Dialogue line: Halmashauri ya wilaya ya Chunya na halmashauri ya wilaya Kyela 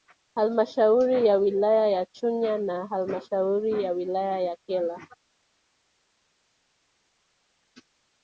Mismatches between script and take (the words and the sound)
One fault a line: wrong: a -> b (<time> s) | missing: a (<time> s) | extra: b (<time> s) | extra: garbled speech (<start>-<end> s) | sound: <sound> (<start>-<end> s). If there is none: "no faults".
extra: ya (4.4 s)